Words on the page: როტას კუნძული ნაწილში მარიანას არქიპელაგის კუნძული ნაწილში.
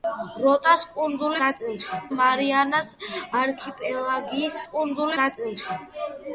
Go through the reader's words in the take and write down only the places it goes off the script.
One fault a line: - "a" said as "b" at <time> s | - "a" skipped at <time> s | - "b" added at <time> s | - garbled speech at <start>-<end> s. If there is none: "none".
none